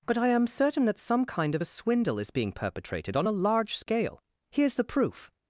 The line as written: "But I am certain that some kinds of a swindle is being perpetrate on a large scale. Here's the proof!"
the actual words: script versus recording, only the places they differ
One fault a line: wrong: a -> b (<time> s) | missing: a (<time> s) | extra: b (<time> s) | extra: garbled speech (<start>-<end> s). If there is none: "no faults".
wrong: kinds -> kind (1.2 s)
wrong: perpetrate -> perpetrated (2.5 s)